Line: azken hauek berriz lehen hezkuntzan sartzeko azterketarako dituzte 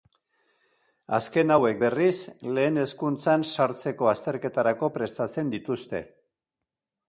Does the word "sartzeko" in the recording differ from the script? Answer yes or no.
no